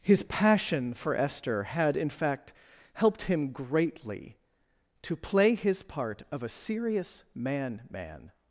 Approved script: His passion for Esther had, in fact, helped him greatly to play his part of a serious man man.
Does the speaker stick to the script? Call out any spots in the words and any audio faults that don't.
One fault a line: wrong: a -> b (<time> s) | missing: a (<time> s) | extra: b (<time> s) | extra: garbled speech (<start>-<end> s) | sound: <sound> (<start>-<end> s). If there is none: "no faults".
no faults